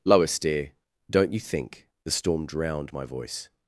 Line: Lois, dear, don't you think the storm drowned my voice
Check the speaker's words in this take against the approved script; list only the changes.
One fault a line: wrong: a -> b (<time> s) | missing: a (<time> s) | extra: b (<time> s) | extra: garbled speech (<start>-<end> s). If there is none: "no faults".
no faults